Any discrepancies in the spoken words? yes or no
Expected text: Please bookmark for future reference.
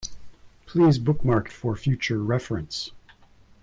no